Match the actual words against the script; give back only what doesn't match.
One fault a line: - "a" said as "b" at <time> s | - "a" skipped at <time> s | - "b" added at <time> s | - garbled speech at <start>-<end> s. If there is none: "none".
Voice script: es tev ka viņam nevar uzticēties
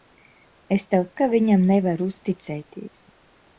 none